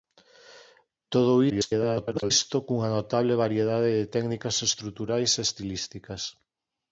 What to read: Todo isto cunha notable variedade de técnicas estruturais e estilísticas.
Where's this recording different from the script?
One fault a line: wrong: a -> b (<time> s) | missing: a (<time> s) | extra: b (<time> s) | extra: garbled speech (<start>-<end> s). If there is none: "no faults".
extra: garbled speech (1.5-2.3 s)